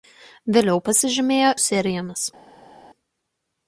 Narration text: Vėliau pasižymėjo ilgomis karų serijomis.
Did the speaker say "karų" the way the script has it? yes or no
no